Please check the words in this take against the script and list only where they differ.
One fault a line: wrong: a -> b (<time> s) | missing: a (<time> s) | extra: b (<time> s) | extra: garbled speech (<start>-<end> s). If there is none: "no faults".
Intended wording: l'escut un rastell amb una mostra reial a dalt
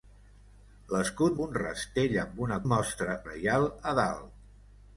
no faults